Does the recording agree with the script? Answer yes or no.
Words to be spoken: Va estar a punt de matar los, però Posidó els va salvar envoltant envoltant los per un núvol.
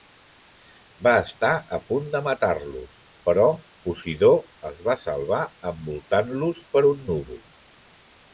no